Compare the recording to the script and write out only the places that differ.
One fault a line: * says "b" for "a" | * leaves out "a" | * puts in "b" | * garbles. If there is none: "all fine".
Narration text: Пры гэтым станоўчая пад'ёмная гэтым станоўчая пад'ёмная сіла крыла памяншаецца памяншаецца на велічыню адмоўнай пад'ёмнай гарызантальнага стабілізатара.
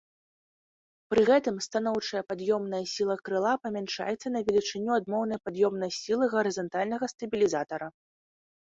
* leaves out "гэтым станоўчая пад'ёмная"
* leaves out "памяншаецца"
* puts in "сілы"